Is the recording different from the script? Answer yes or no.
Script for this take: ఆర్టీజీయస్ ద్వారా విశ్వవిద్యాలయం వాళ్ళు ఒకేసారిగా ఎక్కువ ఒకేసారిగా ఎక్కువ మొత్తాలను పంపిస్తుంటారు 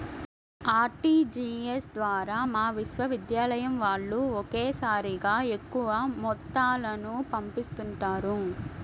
yes